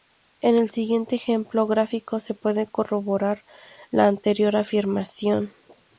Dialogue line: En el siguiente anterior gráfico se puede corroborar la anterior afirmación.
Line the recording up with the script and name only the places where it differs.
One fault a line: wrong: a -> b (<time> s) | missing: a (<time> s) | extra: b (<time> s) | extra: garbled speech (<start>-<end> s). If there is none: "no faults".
wrong: anterior -> ejemplo (1.1 s)